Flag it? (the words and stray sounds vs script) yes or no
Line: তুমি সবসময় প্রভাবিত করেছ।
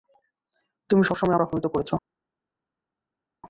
no